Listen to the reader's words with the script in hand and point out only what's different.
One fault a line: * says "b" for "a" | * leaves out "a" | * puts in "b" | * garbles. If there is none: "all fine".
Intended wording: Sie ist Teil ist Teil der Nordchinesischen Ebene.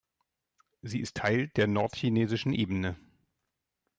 * leaves out "ist Teil"